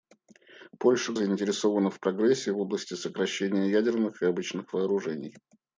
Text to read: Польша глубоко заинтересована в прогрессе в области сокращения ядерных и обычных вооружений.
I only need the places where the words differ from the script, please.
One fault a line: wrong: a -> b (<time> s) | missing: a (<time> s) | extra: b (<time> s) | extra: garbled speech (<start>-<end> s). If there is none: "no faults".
missing: глубоко (1.1 s)